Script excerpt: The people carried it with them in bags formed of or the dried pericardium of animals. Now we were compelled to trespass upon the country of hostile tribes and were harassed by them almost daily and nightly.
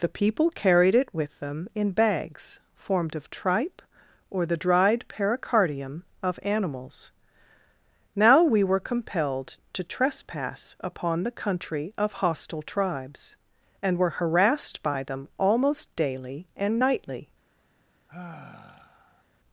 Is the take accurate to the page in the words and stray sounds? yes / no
no